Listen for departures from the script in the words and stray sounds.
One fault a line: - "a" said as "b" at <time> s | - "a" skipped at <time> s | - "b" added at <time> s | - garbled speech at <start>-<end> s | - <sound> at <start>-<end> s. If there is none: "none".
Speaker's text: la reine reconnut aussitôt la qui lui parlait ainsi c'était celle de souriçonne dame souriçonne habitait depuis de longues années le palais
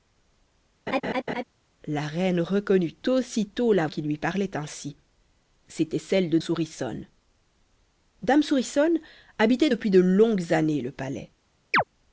- laugh at 0.9-1.4 s
- chirp at 11.7-11.8 s